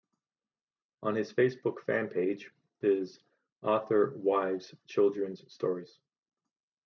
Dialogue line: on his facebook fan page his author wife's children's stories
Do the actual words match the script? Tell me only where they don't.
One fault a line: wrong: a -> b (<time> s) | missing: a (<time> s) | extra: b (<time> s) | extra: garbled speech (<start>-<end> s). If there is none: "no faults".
no faults